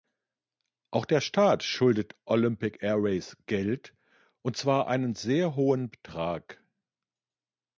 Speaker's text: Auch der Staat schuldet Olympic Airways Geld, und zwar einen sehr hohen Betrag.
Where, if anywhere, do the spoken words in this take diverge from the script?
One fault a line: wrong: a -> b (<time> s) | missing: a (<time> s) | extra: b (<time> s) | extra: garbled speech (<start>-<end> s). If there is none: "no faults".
no faults